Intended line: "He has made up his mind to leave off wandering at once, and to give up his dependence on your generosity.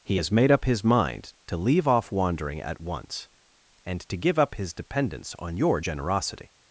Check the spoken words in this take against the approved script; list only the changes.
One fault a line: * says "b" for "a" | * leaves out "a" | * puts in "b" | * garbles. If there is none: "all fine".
all fine